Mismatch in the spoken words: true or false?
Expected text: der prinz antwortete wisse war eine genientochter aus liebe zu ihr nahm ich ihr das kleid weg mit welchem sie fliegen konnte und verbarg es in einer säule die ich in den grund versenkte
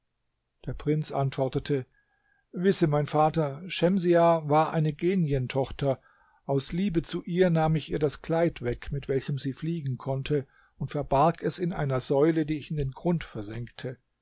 true